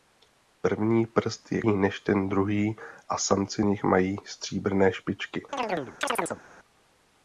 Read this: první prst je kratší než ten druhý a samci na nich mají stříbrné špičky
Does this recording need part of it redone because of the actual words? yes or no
yes